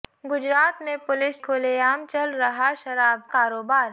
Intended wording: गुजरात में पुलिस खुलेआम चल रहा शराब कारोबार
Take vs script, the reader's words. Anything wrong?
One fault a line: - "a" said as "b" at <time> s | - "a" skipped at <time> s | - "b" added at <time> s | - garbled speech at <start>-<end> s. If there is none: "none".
none